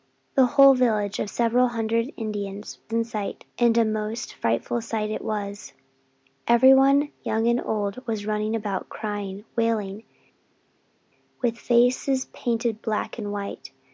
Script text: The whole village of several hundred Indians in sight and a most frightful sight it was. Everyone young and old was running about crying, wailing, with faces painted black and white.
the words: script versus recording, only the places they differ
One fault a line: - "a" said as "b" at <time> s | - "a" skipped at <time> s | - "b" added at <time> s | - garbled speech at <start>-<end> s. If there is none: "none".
none